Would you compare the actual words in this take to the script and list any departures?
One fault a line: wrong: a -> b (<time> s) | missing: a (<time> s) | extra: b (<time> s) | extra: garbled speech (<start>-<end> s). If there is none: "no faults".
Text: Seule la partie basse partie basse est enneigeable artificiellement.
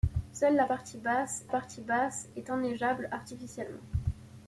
no faults